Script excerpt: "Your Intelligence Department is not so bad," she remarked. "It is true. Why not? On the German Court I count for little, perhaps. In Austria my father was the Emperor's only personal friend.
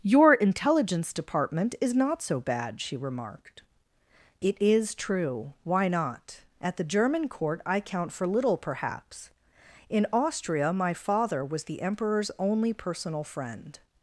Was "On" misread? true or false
true